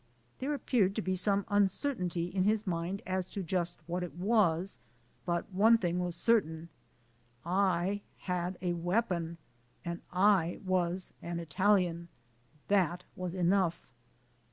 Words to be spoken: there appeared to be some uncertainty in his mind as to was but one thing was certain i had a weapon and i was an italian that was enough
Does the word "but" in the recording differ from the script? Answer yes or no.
no